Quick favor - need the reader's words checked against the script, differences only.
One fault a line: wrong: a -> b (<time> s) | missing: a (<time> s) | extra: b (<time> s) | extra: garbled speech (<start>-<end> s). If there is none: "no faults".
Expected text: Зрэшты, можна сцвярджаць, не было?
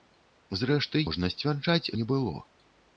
no faults